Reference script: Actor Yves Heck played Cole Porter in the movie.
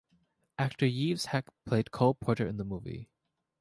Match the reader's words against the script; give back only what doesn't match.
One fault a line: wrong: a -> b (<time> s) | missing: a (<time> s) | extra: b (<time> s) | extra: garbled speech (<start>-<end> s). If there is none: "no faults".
no faults